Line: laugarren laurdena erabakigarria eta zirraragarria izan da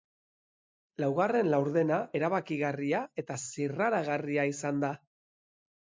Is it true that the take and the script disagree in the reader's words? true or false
false